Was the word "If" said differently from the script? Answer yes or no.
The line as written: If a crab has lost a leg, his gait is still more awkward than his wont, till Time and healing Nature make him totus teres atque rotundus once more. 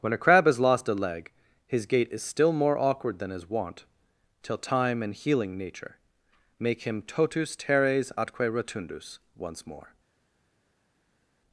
yes